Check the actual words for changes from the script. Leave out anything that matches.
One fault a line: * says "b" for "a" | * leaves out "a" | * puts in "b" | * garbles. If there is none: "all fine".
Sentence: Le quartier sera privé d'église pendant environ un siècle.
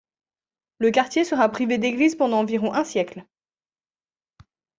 all fine